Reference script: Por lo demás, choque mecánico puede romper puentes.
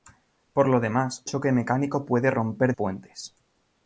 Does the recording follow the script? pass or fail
pass